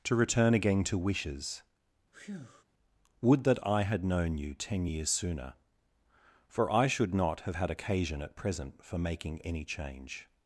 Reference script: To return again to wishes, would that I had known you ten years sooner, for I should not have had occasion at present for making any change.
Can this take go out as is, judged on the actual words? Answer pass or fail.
pass